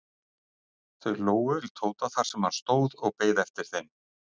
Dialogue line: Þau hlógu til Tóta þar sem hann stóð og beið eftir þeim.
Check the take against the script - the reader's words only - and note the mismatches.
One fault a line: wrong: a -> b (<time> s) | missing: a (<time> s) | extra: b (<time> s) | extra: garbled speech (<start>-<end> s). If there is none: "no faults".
no faults